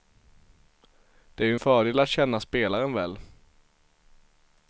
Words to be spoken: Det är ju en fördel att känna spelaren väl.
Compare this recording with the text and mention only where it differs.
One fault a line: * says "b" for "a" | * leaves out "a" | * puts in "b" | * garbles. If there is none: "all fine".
all fine